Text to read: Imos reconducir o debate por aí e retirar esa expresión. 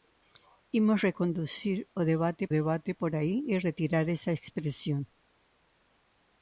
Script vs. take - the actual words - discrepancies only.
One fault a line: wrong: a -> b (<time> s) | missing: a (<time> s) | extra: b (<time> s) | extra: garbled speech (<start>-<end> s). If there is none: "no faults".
extra: debate (2.6 s)